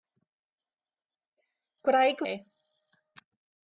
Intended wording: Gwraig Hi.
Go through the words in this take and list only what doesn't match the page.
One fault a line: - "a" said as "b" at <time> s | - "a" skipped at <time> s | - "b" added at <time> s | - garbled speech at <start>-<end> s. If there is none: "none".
none